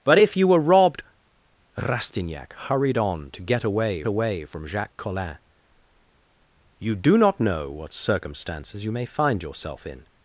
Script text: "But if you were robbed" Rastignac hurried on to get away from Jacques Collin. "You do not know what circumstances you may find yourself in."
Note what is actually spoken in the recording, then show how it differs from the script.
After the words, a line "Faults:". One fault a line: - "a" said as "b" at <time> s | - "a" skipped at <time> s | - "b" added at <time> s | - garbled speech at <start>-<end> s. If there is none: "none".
"But if you were robbed" Rastignac hurried on to get away away from Jacques Collin. "You do not know what circumstances you may find yourself in."
Faults:
- "away" added at 4.0 s